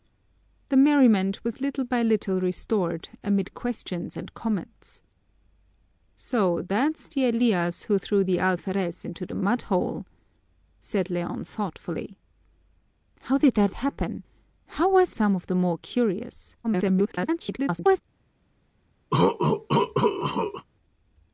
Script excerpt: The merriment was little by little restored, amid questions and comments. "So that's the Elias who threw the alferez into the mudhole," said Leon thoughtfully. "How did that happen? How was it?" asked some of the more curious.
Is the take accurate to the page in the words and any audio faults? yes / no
no